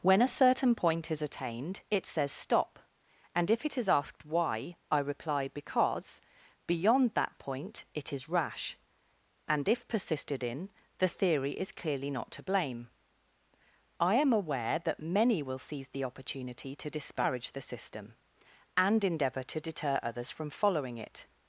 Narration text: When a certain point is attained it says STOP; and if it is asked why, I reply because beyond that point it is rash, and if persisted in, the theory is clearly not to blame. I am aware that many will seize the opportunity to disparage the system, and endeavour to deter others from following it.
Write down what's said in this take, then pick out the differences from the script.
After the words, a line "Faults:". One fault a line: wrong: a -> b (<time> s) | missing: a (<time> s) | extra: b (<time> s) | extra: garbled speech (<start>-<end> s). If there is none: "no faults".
When a certain point is attained it says STOP; and if it is asked why, I reply because beyond that point it is rash, and if persisted in, the theory is clearly not to blame. I am aware that many will seize the opportunity to disparage the system, and endeavour to deter others from following it.
Faults:
no faults